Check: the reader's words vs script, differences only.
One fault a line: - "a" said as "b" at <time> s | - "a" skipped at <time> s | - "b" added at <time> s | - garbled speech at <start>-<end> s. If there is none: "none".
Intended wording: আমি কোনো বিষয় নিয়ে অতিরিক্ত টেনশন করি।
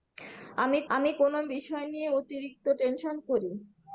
- "আমি" added at 0.9 s